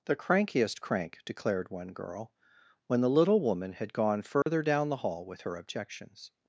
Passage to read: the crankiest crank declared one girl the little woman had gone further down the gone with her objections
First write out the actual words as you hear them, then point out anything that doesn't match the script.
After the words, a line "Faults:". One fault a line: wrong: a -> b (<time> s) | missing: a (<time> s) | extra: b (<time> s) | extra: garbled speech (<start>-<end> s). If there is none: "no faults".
the crankiest crank declared one girl when the little woman had gone further down the hall with her objections
Faults:
extra: when (2.9 s)
wrong: gone -> hall (5.0 s)